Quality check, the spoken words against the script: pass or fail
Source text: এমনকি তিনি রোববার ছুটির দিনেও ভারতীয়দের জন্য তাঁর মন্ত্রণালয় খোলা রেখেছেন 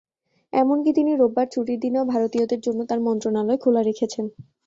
pass